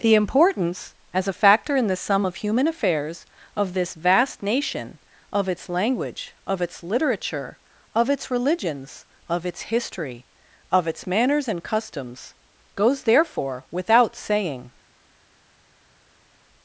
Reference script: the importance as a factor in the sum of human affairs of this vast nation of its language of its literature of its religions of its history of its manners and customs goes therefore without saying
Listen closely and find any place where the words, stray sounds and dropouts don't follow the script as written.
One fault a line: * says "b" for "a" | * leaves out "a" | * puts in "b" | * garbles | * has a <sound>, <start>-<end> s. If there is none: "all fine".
all fine